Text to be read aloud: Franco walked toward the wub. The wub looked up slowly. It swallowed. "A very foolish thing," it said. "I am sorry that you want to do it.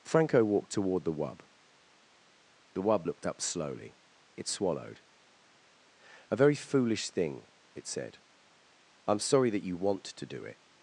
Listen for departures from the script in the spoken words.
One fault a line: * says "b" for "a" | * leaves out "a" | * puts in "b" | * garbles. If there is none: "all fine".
all fine